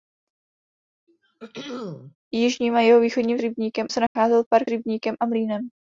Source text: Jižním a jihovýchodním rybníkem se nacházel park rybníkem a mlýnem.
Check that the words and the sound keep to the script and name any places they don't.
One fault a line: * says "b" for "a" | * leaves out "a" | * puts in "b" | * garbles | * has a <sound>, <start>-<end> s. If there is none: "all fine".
* has a throat clearing, 1.1-2.2 s
* has a dropout, 4.1-4.2 s